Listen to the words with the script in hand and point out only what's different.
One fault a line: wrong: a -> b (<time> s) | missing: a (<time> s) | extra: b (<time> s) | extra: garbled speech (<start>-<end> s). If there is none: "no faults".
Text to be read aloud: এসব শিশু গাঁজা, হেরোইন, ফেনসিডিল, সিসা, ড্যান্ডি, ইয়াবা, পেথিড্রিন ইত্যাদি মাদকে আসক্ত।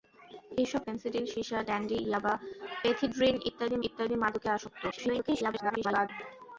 missing: শিশু গাঁজা হেরোইন (0.8 s)
extra: ইত্যাদি (3.9 s)
extra: garbled speech (4.9-6.1 s)